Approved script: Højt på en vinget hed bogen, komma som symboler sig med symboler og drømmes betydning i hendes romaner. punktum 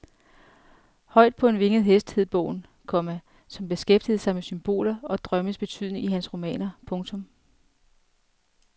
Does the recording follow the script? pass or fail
fail